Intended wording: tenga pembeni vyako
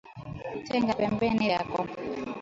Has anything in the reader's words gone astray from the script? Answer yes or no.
no